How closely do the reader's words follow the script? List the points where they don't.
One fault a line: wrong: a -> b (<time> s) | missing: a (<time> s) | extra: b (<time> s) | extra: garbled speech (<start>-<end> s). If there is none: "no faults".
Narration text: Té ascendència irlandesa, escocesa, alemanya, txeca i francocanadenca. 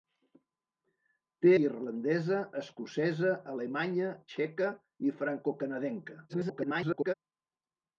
missing: ascendència (1.5 s)
extra: garbled speech (6.3-7.1 s)